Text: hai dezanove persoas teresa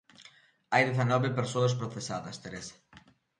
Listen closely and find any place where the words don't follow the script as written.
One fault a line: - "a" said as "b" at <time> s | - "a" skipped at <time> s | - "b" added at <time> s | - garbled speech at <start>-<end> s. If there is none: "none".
- "procesadas" added at 1.8 s